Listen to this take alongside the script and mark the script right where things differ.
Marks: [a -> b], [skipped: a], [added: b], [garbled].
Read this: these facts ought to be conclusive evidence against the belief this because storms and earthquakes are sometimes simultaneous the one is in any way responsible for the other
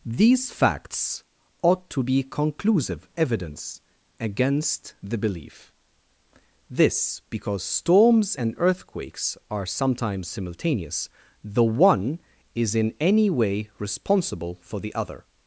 these facts ought to be conclusive evidence against the belief this because storms and earthquakes are sometimes simultaneous the one is in any way responsible for the other